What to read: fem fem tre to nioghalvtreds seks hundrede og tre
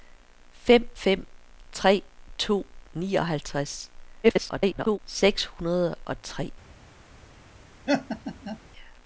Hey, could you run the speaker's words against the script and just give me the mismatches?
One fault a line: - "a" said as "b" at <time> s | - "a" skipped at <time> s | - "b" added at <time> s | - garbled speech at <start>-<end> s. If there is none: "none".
- garbled speech at 4.2-5.0 s